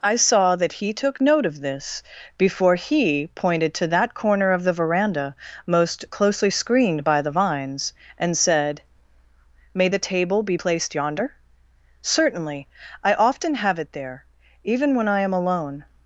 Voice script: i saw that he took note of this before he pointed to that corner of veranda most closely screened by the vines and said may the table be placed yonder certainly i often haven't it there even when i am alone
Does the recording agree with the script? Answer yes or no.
no